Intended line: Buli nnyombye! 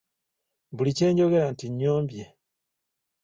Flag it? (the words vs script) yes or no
yes